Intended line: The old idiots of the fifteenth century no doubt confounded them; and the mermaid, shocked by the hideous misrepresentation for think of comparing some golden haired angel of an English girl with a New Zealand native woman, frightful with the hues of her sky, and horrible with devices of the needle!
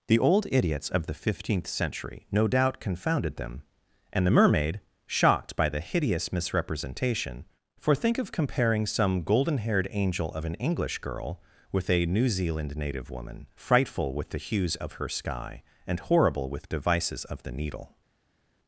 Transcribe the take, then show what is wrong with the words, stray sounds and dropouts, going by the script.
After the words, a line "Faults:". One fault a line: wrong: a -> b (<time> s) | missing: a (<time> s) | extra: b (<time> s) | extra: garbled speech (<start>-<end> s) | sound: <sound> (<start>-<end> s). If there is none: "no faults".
The old idiots of the fifteenth century no doubt confounded them; and the mermaid, shocked by the hideous misrepresentation for think of comparing some golden haired angel of an English girl with a New Zealand native woman, frightful with the hues of her sky, and horrible with devices of the needle!
Faults:
no faults